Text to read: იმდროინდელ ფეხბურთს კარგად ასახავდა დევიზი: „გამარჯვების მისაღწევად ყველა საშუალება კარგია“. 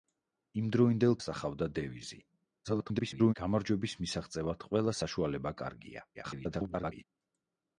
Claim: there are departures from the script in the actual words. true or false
true